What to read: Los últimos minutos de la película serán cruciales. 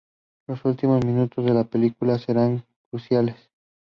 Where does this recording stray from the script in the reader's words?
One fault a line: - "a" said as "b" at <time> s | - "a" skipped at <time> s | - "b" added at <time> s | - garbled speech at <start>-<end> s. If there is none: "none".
none